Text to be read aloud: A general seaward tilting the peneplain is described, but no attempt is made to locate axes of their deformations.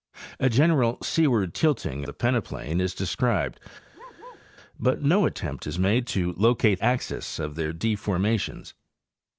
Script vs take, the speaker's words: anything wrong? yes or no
no